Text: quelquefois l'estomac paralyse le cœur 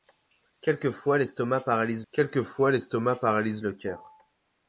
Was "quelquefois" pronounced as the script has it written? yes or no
yes